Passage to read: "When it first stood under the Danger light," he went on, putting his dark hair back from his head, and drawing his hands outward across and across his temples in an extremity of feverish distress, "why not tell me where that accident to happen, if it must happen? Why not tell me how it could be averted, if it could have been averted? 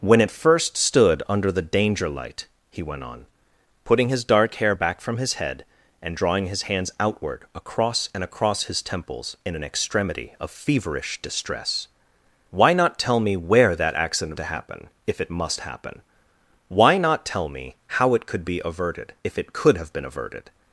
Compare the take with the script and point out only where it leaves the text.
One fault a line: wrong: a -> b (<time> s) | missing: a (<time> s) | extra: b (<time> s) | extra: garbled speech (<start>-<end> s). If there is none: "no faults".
no faults